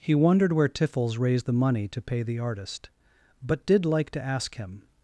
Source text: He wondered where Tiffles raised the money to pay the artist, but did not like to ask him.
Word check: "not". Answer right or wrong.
wrong